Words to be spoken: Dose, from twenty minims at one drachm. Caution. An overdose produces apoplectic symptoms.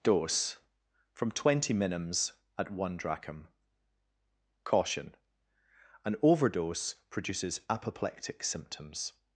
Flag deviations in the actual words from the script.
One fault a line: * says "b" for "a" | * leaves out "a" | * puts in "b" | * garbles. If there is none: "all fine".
all fine